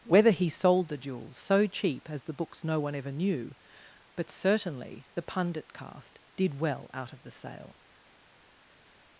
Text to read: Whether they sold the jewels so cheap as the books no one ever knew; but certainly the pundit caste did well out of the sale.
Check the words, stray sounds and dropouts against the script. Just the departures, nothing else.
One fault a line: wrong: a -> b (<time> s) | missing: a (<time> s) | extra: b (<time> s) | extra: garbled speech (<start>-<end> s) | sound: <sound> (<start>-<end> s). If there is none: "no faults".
wrong: they -> he (0.3 s)